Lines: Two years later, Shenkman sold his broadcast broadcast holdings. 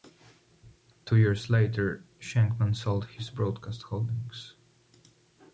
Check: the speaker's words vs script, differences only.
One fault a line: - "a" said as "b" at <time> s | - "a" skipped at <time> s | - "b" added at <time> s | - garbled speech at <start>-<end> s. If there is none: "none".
- "broadcast" skipped at 3.8 s